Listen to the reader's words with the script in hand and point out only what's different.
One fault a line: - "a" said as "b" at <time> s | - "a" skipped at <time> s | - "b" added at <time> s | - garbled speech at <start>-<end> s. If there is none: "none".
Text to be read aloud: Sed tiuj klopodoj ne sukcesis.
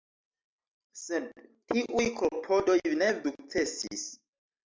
none